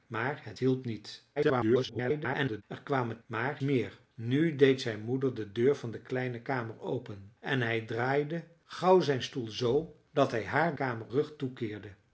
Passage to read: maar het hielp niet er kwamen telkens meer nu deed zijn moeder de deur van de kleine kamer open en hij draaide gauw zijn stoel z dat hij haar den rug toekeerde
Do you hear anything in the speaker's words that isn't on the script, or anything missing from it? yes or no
yes